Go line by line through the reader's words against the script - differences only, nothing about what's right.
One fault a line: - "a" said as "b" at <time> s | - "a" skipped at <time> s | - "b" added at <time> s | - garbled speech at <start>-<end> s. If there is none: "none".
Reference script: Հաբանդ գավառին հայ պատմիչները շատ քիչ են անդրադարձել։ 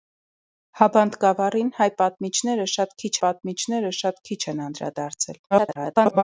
- "պատմիչները շատ քիչ" added at 3.3 s
- garbled speech at 5.5-6.2 s